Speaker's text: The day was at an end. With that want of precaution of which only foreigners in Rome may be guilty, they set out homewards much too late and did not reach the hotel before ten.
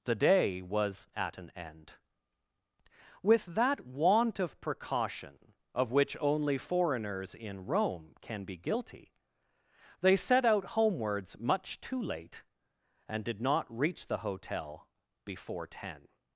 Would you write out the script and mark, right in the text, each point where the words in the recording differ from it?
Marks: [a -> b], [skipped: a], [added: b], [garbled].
The day was at an end. With that want of precaution of which only foreigners in Rome [may -> can] be guilty, they set out homewards much too late and did not reach the hotel before ten.